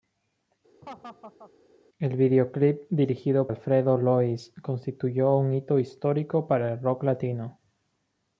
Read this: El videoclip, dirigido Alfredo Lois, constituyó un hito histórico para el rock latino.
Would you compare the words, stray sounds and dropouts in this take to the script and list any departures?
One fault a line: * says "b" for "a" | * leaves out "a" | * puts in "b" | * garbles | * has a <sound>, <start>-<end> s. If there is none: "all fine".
* has a laugh, 0.8-1.5 s